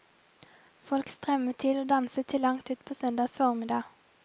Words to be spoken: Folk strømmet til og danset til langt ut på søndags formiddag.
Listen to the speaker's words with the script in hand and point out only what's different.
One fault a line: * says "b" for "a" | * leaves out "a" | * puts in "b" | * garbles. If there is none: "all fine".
all fine